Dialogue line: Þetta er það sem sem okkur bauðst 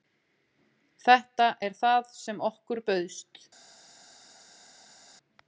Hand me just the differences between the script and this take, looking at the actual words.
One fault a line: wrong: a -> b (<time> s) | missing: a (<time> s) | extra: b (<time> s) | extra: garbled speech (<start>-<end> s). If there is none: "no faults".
missing: sem (2.4 s)